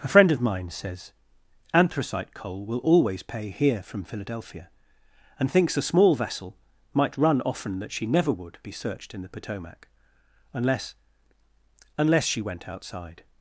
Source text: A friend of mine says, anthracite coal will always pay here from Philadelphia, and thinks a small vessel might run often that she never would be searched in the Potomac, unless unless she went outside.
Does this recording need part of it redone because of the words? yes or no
no